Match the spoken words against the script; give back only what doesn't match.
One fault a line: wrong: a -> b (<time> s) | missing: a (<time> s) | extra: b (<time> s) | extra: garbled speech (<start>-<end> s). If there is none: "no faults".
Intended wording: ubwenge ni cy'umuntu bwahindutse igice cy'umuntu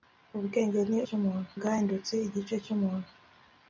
no faults